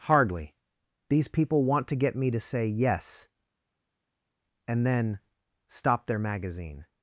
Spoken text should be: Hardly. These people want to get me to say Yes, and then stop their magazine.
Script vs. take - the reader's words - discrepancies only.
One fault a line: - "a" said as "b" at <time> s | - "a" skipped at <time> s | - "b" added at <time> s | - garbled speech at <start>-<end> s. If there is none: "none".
none